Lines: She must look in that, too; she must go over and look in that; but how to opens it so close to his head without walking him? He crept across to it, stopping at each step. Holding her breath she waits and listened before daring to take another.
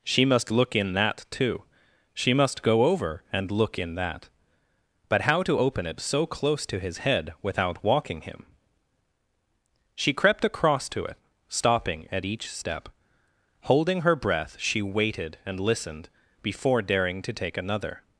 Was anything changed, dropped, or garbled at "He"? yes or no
yes